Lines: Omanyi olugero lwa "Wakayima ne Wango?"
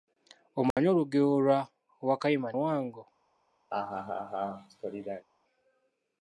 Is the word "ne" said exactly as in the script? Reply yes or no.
no